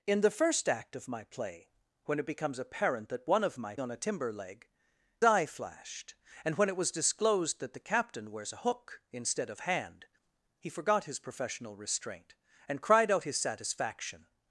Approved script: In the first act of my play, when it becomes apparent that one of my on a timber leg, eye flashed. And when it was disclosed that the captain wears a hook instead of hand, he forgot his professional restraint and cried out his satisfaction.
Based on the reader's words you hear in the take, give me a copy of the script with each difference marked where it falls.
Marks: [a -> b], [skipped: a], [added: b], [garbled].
In the first act of my play, when it becomes apparent that one of my on a timber leg, eye flashed. And when it was disclosed that the captain wears a hook instead of hand, he forgot his professional restraint and cried out his satisfaction.